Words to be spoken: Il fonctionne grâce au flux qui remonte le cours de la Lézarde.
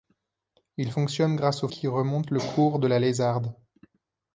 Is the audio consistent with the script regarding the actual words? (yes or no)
no